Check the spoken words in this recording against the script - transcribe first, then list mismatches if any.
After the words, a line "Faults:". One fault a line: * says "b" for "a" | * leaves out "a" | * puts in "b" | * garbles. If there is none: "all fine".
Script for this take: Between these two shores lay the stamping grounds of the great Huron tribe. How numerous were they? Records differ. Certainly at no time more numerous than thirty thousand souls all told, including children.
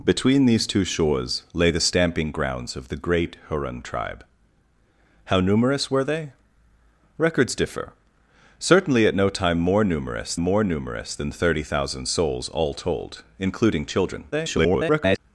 Between these two shores lay the stamping grounds of the great Huron tribe. How numerous were they? Records differ. Certainly at no time more numerous more numerous than thirty thousand souls all told, including children. [garbled]
Faults:
* puts in "more numerous"
* garbles